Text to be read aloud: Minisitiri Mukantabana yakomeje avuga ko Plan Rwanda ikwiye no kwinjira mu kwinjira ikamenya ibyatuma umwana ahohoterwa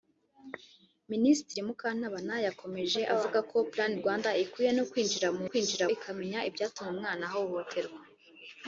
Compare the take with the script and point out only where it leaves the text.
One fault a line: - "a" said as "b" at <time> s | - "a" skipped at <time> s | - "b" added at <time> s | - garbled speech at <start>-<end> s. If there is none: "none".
none